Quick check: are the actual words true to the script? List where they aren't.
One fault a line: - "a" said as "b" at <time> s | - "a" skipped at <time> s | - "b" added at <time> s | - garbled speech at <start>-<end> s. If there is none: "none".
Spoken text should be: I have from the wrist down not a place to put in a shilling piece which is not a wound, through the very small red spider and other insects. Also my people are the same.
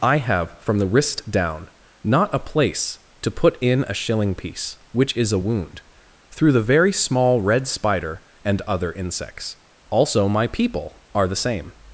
- "not" skipped at 5.3 s